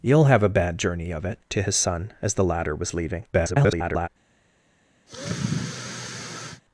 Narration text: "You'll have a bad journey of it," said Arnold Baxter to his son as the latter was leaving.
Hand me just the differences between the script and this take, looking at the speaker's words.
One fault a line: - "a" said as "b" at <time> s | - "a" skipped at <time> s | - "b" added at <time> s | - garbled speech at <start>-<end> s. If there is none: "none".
- "said Arnold Baxter" skipped at 1.4 s
- garbled speech at 3.3-4.1 s